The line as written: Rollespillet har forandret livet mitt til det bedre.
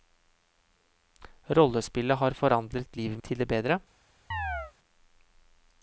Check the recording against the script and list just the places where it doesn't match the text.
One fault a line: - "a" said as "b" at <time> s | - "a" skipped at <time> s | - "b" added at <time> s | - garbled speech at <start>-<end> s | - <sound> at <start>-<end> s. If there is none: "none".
- "mitt" skipped at 3.2 s
- chirp at 4.3-4.7 s